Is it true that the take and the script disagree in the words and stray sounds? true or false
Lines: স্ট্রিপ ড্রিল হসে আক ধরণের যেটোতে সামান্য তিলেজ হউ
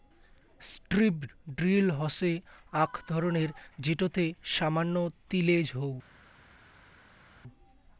false